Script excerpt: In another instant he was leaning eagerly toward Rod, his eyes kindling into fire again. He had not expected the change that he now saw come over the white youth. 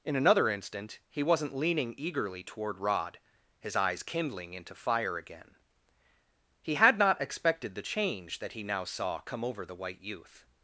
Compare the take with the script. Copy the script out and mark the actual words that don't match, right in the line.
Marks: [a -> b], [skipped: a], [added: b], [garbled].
In another instant he [was -> wasn't] leaning eagerly toward Rod, his eyes kindling into fire again. He had not expected the change that he now saw come over the white youth.